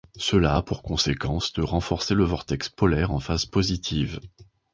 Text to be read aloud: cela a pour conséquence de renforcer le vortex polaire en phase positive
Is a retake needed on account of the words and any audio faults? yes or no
no